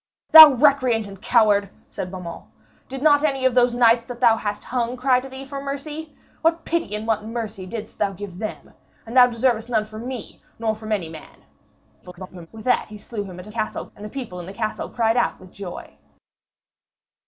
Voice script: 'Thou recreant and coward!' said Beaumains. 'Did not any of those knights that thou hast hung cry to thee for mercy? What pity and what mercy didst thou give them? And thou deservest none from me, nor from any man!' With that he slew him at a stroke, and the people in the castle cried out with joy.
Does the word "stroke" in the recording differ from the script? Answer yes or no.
yes